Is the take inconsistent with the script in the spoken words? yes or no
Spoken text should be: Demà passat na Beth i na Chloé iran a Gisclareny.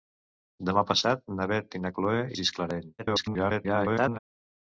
yes